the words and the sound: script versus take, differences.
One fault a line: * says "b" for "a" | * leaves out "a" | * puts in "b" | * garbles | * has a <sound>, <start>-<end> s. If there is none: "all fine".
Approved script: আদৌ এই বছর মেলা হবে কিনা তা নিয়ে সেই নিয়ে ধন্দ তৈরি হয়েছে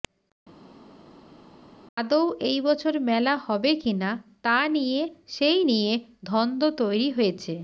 all fine